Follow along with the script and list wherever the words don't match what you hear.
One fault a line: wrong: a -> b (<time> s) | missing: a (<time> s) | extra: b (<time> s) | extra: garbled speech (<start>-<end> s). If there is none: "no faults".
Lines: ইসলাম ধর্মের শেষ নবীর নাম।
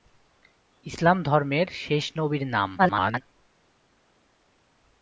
extra: garbled speech (2.8-3.2 s)